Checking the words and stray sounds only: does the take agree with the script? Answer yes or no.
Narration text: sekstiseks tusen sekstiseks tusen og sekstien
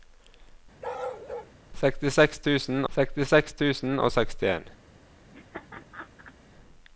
no